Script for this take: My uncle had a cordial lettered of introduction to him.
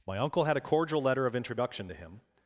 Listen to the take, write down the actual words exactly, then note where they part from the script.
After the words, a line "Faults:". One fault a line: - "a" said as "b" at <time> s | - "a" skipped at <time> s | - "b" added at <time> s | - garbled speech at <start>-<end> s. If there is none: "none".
My uncle had a cordial letter of introduction to him.
Faults:
- "lettered" said as "letter" at 1.0 s